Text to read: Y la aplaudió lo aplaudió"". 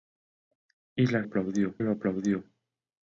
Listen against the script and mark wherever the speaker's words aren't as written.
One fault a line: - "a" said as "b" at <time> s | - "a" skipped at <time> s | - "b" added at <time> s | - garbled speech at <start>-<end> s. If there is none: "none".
none